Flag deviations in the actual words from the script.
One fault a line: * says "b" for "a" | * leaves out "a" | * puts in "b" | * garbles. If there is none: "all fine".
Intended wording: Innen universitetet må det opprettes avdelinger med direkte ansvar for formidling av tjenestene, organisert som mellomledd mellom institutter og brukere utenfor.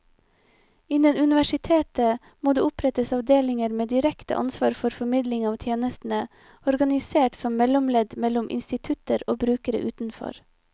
all fine